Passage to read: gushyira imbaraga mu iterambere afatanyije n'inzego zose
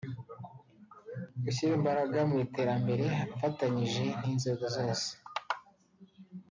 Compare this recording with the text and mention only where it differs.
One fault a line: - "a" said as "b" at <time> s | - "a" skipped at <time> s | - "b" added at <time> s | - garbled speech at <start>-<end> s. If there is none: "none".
none